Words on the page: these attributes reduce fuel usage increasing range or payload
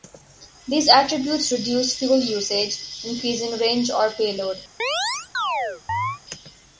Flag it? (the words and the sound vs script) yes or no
yes